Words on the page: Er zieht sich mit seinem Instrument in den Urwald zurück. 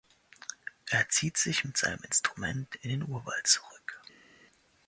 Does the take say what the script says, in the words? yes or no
yes